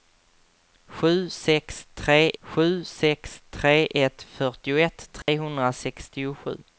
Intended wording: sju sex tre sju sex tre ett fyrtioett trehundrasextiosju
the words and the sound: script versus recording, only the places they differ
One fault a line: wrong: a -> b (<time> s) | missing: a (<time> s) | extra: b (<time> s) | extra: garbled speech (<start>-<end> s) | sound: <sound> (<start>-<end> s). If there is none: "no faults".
sound: dropout (5.2-5.3 s)